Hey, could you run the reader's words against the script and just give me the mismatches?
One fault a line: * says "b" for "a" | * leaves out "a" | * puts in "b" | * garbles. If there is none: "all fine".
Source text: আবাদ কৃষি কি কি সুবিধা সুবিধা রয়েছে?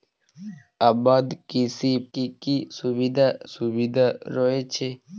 all fine